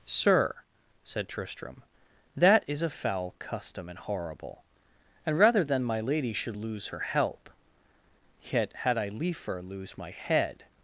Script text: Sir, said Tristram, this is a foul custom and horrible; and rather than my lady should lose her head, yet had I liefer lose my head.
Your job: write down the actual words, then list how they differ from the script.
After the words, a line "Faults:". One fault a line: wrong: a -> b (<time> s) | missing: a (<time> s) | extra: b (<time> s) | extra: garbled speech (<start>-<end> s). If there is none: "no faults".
Sir, said Tristram, that is a foul custom and horrible; and rather than my lady should lose her help, yet had I liefer lose my head.
Faults:
wrong: this -> that (2.4 s)
wrong: head -> help (7.0 s)